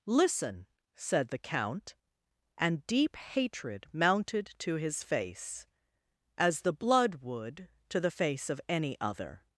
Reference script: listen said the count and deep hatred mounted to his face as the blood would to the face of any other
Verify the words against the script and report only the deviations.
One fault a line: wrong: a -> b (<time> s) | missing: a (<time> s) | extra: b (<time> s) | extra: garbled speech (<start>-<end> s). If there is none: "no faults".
no faults